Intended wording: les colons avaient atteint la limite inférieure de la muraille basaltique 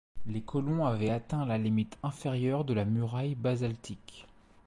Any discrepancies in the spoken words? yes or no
no